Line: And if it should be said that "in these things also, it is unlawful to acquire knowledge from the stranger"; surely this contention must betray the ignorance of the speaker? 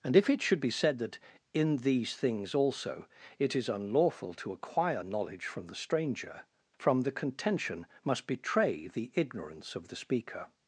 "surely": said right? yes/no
no